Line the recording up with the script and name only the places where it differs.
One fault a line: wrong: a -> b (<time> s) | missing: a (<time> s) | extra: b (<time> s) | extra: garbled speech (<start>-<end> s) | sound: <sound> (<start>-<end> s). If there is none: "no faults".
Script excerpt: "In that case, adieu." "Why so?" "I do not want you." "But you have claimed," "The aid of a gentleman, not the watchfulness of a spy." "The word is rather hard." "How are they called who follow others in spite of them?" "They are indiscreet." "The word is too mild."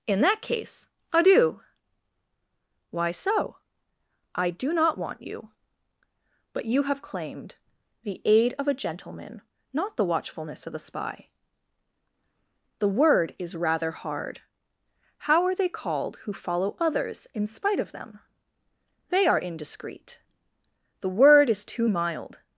no faults